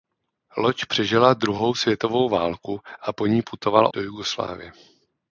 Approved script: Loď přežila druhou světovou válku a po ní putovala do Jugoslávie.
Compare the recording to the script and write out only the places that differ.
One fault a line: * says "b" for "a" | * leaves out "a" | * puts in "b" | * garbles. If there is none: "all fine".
all fine